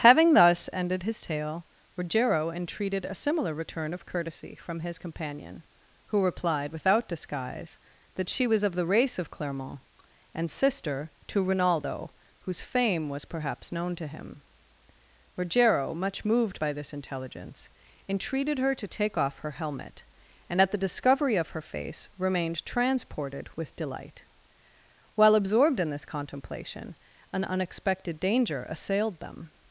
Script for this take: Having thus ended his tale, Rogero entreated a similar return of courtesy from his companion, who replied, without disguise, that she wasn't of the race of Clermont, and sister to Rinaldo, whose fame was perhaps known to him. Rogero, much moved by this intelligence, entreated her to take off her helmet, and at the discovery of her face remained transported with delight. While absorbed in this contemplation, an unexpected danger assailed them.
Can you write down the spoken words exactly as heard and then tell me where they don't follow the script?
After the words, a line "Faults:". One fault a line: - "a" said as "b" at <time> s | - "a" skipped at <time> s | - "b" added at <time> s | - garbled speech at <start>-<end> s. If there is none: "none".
Having thus ended his tale, Rogero entreated a similar return of courtesy from his companion, who replied, without disguise, that she was of the race of Clermont, and sister to Rinaldo, whose fame was perhaps known to him. Rogero, much moved by this intelligence, entreated her to take off her helmet, and at the discovery of her face remained transported with delight. While absorbed in this contemplation, an unexpected danger assailed them.
Faults:
- "wasn't" said as "was" at 8.5 s